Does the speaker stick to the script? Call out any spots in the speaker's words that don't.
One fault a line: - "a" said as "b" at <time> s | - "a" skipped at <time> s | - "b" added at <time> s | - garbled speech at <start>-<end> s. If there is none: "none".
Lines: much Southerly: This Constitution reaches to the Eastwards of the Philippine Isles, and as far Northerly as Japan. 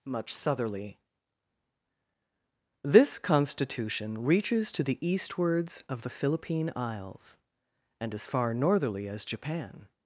none